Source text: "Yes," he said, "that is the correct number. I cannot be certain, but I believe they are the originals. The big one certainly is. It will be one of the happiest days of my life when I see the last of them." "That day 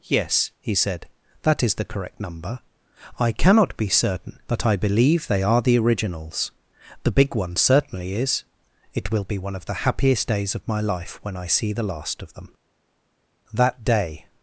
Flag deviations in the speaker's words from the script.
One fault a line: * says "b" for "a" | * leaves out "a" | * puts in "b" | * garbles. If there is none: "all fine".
all fine